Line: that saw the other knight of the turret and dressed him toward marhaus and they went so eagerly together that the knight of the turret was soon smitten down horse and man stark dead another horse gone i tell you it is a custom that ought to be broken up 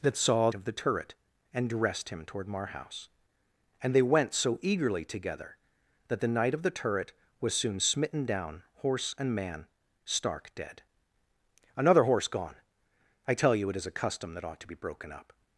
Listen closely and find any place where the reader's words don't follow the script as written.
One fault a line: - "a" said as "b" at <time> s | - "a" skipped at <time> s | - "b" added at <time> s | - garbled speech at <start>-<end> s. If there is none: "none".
- "the other knight" skipped at 0.5 s